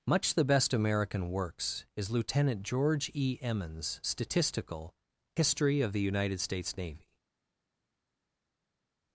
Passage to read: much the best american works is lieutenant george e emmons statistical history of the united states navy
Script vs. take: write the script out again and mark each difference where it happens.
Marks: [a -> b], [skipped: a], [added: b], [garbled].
much the best american works is lieutenant george e emmons statistical history of the united states navy